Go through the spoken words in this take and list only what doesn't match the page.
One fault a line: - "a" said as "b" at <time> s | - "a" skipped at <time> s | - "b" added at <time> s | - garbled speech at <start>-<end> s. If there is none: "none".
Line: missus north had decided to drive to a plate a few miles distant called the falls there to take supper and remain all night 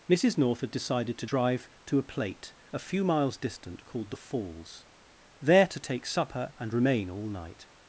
none